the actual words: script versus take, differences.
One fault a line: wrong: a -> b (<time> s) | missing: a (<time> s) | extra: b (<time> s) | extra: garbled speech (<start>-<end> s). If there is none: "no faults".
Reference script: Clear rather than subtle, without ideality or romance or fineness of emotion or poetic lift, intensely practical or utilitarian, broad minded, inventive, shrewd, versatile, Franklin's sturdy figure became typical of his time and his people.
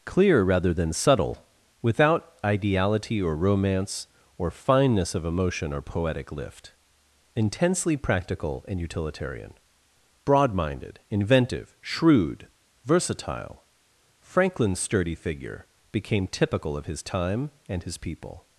wrong: or -> and (8.7 s)